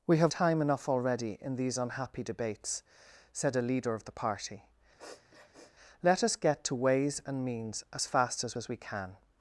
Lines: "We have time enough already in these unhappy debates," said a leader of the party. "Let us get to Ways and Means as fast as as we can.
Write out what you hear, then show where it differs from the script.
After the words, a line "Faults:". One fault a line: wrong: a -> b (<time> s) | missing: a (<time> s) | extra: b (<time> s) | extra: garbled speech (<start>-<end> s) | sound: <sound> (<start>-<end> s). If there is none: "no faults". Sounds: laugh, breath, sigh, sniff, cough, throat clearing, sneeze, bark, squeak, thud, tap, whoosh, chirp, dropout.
"We have time enough already in these unhappy debates," said a leader of the party. "Let us get to Ways and Means as fast as as we can.
Faults:
sound: sniff (5.0-5.7 s)